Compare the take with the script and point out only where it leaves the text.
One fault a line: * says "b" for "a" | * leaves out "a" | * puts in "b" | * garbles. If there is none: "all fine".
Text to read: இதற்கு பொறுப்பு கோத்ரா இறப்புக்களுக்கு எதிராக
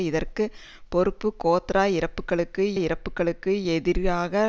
* puts in "இறப்புக்களுக்கு"